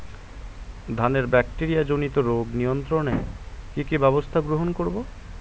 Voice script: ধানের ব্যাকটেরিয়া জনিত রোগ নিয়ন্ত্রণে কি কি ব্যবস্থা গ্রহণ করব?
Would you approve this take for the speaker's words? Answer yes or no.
yes